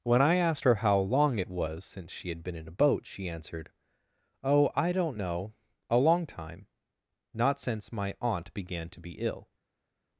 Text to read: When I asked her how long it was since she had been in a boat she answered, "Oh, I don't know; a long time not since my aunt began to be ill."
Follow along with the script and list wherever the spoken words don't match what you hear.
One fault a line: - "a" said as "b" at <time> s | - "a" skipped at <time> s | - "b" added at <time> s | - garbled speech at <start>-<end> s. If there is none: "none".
none